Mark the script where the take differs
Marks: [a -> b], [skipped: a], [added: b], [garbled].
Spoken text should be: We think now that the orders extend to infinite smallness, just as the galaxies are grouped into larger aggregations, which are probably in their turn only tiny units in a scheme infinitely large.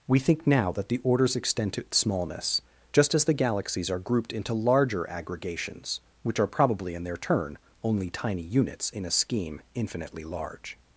We think now that the orders extend to [skipped: infinite] smallness, just as the galaxies are grouped into larger aggregations, which are probably in their turn only tiny units in a scheme infinitely large.